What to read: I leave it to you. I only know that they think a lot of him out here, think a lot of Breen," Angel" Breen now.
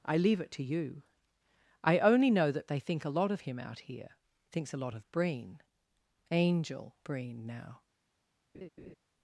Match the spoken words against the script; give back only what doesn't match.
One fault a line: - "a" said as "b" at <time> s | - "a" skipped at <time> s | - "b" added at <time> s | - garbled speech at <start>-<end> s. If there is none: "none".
- "think" said as "thinks" at 4.5 s